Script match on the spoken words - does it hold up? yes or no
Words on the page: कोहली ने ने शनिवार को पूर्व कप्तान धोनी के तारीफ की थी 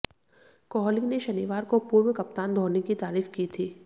no